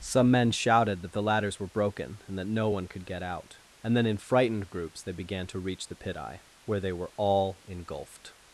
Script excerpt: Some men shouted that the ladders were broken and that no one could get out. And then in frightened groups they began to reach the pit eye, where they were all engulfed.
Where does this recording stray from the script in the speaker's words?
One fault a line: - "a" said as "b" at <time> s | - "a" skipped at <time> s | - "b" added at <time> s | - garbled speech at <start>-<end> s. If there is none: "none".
none